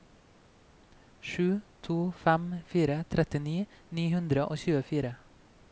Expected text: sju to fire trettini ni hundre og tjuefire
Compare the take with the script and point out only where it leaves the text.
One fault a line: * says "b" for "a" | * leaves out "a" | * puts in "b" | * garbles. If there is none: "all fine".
* puts in "fem"